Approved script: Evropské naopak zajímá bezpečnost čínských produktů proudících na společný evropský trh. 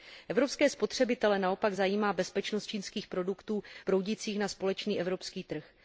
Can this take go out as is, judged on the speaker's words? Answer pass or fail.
fail